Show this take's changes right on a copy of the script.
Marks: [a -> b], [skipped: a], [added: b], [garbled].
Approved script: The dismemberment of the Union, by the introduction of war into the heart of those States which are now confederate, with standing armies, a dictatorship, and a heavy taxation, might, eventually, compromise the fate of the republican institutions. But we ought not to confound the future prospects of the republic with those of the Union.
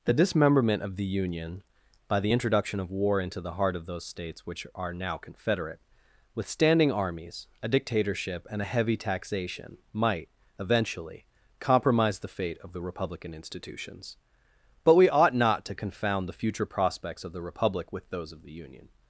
The dismemberment of the Union, by the introduction of war into the heart of those States which are now confederate, with standing armies, a dictatorship, and a heavy taxation, might, eventually, compromise the fate of the republican institutions. But we ought not to confound the future prospects of the republic with those of the Union.